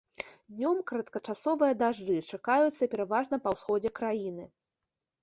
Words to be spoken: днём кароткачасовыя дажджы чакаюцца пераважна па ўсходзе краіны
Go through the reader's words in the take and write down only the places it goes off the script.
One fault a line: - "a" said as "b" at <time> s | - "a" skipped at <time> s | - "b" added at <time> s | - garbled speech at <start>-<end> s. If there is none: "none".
none